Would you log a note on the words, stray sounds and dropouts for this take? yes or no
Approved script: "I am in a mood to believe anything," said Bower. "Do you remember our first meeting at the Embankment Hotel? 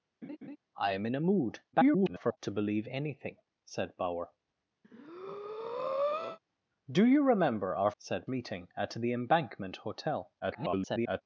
yes